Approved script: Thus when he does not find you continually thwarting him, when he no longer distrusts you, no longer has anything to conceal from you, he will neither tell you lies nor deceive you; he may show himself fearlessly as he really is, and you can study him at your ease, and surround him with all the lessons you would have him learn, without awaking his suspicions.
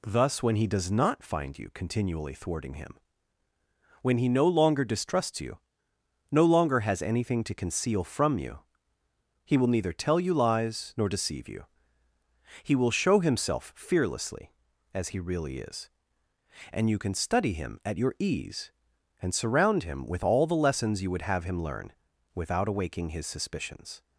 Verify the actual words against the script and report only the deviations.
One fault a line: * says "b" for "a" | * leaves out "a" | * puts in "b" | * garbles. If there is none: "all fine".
* says "will" for "may"